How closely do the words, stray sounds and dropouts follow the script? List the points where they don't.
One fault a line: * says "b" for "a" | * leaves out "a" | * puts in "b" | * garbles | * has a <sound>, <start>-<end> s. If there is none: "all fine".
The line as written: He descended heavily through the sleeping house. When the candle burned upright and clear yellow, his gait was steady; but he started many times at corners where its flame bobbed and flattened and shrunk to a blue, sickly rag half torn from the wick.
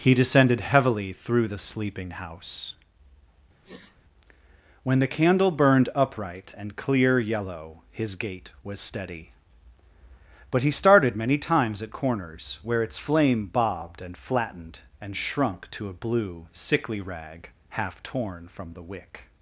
* has a sniff, 3.6-4.0 s